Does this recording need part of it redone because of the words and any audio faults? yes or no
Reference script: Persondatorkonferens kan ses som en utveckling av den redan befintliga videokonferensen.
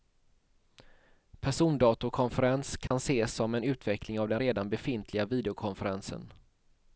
yes